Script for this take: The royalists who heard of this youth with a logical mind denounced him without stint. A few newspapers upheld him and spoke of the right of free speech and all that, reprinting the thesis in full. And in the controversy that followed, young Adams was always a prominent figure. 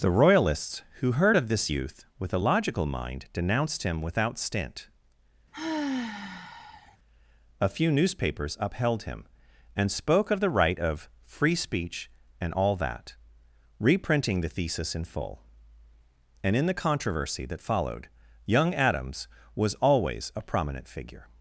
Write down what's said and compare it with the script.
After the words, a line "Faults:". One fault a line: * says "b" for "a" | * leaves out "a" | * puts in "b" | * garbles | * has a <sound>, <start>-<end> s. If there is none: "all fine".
The royalists who heard of this youth with a logical mind denounced him without stint. A few newspapers upheld him and spoke of the right of free speech and all that, reprinting the thesis in full. And in the controversy that followed, young Adams was always a prominent figure.
Faults:
* has a sigh, 5.5-7.0 s